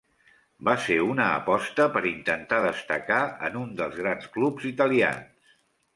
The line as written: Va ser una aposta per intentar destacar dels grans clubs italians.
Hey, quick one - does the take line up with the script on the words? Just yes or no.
no